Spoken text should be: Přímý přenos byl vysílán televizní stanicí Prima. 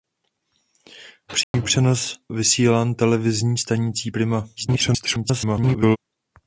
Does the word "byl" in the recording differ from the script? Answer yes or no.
yes